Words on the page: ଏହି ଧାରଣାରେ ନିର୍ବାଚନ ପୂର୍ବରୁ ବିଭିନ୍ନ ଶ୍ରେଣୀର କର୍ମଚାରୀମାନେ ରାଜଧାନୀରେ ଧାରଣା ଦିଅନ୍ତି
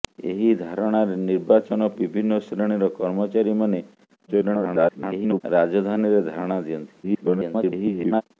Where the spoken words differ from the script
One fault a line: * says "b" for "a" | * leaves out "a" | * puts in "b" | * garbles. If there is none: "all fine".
* leaves out "ପୂର୍ବରୁ"
* garbles
* garbles